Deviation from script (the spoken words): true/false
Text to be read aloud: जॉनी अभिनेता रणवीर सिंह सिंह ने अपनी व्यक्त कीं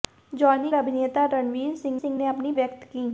false